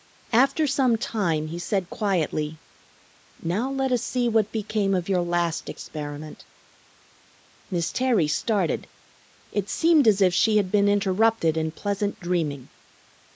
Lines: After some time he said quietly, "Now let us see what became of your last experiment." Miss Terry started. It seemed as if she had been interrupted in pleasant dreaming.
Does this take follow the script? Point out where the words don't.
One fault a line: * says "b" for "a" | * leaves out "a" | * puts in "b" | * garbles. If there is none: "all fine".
all fine